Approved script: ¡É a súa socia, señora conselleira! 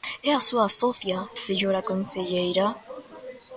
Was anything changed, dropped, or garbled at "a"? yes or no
no